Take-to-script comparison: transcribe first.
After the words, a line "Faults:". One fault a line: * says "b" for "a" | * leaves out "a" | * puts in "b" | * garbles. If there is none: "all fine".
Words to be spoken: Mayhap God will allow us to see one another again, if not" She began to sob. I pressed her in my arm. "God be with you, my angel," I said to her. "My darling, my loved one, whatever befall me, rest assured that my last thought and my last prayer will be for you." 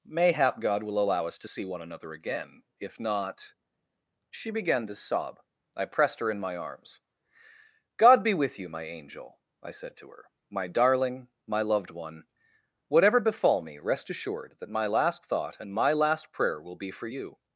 Mayhap God will allow us to see one another again, if not" She began to sob. I pressed her in my arms. "God be with you, my angel," I said to her. "My darling, my loved one, whatever befall me, rest assured that my last thought and my last prayer will be for you."
Faults:
* says "arms" for "arm"